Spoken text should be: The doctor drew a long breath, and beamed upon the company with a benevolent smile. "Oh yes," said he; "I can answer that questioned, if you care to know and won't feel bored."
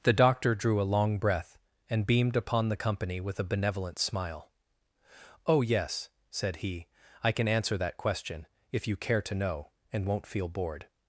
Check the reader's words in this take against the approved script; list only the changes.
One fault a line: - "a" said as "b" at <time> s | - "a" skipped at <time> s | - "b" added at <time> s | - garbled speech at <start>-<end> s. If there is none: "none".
- "questioned" said as "question" at 8.0 s